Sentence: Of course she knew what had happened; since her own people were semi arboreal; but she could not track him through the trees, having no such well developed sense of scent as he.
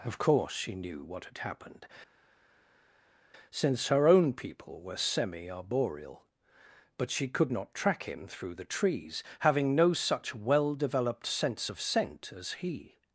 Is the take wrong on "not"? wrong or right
right